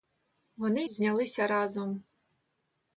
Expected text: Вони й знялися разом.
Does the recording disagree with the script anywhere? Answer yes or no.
no